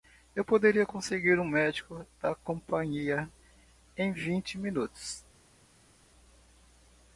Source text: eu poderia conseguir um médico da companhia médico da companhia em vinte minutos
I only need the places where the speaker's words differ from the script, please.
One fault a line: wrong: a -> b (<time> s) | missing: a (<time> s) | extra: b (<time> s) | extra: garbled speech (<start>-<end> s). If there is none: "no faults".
missing: médico da companhia (3.3 s)